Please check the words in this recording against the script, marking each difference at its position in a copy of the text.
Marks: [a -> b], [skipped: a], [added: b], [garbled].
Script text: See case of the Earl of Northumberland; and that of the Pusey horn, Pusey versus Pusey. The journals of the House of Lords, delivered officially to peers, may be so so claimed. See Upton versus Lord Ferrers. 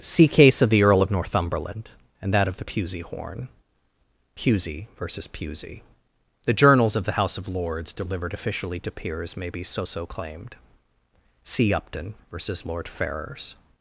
See case of the Earl of Northumberland; and that of the Pusey horn, Pusey versus Pusey. The journals of the House of Lords, delivered officially to peers, may be so so claimed. See Upton versus Lord Ferrers.